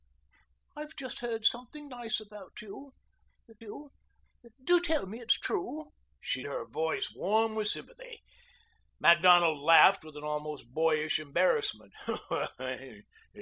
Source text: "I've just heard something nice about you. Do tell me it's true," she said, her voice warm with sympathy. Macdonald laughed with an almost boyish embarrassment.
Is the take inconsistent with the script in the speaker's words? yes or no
yes